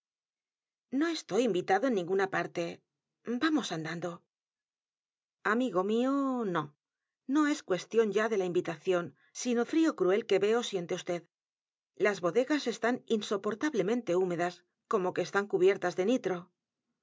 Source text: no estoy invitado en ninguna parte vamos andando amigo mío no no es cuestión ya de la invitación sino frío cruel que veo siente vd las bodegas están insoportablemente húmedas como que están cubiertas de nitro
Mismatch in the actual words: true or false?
false